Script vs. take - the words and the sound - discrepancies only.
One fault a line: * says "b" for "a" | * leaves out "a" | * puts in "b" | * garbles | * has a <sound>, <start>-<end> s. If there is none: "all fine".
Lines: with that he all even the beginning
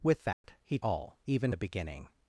* has a dropout, 0.3-0.4 s